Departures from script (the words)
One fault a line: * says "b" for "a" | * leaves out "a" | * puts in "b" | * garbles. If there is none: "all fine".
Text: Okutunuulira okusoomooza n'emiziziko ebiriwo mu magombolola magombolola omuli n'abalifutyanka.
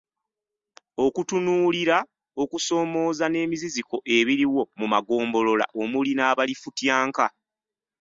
* leaves out "magombolola"